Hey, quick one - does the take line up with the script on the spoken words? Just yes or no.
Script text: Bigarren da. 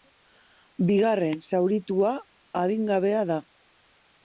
no